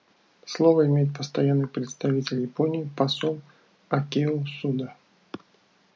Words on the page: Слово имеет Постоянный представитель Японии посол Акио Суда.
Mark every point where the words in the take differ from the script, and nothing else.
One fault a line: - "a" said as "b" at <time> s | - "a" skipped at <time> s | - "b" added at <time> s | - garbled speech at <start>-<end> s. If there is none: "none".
none